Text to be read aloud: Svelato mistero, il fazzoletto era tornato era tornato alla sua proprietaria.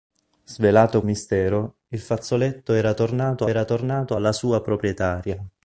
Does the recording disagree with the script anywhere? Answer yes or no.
no